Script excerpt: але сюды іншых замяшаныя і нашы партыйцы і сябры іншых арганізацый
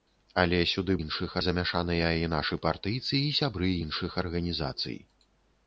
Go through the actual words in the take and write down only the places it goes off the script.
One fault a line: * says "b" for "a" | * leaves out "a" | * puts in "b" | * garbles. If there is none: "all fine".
all fine